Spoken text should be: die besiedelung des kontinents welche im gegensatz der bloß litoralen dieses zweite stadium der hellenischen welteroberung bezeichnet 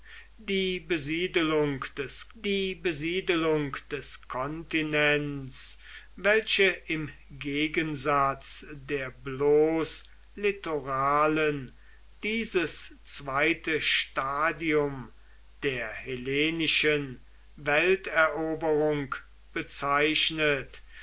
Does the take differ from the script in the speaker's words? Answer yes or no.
yes